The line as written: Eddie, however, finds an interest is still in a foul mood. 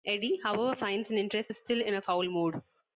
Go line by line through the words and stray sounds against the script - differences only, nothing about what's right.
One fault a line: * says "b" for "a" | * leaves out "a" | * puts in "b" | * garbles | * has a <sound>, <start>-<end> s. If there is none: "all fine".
all fine